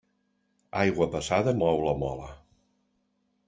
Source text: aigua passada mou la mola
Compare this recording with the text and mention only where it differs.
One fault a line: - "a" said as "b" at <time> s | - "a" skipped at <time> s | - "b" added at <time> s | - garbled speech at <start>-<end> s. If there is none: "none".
none